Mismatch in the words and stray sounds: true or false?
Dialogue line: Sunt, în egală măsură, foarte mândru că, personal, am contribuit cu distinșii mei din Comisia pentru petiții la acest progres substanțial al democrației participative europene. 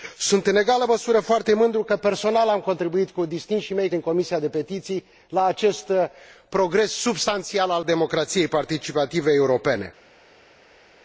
false